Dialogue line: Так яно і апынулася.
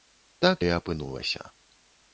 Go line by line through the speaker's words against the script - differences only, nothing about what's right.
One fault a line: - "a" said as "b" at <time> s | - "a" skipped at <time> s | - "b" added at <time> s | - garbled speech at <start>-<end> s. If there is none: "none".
- "яно" skipped at 0.6 s